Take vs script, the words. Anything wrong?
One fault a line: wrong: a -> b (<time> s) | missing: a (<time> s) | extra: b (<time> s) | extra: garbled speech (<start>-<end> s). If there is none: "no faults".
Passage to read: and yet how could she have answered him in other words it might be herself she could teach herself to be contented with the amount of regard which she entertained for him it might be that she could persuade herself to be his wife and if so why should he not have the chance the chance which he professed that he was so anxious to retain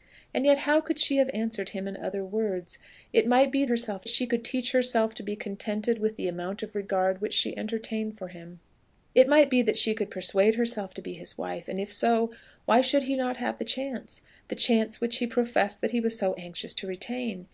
no faults